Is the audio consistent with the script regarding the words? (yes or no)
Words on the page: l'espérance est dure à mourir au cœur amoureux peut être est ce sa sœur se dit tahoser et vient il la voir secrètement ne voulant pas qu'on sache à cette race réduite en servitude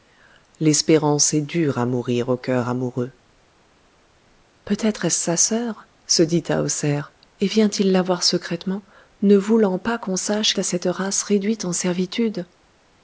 yes